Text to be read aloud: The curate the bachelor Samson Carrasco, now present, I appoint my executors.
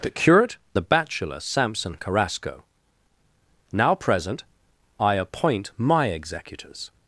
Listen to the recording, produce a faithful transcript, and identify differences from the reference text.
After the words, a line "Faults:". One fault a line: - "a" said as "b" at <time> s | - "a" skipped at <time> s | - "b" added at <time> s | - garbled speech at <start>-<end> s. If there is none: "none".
The curate the bachelor Samson Carrasco, now present, I appoint my executors.
Faults:
none